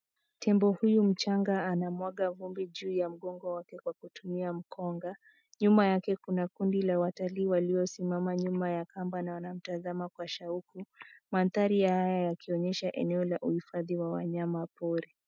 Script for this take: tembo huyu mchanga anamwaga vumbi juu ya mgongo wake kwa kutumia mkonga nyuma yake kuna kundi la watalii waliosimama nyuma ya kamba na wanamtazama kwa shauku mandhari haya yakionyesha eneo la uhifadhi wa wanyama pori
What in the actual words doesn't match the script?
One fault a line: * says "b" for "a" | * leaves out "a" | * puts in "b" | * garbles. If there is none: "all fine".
all fine